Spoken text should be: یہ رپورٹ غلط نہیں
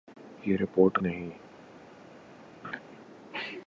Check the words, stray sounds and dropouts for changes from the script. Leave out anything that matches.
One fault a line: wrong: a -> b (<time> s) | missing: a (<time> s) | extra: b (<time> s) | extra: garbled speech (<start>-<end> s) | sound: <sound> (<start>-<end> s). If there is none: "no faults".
missing: غلط (1.0 s)
sound: laugh (2.6-2.8 s)